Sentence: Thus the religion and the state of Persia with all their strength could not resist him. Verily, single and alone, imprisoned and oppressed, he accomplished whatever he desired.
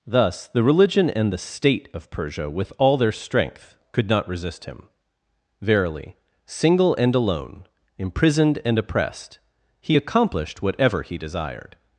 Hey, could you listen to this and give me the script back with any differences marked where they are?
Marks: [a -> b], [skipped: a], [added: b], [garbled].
Thus the religion and the state of Persia with all their strength could not resist him. Verily, single and alone, imprisoned and oppressed, he accomplished whatever he desired.